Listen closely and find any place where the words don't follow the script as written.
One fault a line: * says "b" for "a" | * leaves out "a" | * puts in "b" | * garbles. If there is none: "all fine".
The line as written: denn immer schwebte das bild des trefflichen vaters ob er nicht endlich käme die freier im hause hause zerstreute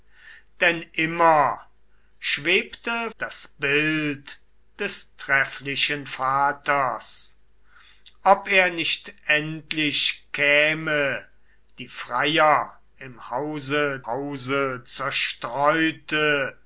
all fine